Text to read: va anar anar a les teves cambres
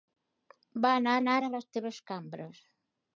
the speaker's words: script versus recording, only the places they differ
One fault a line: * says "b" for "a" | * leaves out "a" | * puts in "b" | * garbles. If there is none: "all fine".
all fine